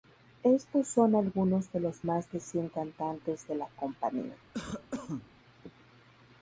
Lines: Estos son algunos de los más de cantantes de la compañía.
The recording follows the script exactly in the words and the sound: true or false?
false